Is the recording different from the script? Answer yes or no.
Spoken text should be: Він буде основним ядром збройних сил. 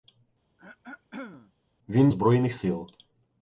yes